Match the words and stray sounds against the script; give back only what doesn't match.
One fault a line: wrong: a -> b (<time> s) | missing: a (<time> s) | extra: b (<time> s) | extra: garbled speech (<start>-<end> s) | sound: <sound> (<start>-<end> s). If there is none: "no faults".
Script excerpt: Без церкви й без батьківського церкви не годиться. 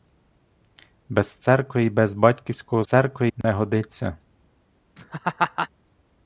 sound: dropout (3.4-3.4 s)
sound: laugh (5.0-5.7 s)